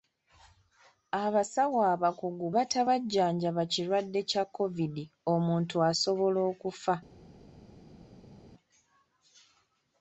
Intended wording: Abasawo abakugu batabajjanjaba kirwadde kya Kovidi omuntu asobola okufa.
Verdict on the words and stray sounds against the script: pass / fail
pass